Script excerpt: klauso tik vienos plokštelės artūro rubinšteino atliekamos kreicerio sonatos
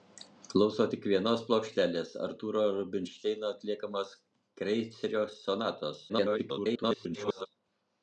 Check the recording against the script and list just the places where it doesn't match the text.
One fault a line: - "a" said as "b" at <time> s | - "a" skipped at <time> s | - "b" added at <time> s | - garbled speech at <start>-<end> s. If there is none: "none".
- garbled speech at 6.1-7.5 s